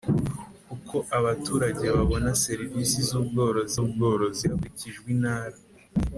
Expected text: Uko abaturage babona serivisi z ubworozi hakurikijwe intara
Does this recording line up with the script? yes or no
no